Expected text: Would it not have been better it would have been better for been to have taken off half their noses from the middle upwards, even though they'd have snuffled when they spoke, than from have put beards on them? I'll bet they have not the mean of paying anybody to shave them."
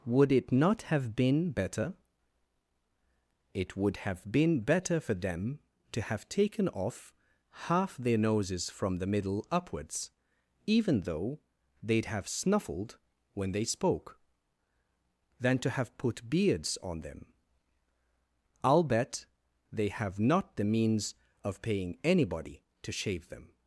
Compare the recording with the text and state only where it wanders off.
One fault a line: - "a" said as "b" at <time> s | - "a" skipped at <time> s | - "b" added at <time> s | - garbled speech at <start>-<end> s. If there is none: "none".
- "been" said as "them" at 5.1 s
- "from" said as "to" at 15.6 s
- "mean" said as "means" at 20.6 s